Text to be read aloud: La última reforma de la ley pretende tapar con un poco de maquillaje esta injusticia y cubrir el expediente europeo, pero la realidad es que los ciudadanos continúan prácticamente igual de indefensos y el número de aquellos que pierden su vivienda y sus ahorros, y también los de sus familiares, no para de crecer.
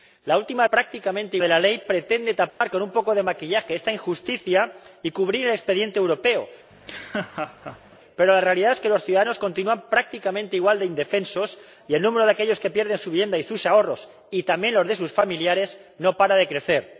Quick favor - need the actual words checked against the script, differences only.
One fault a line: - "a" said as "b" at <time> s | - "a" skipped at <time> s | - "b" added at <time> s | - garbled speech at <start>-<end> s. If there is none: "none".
- "reforma" said as "prácticamente" at 0.7 s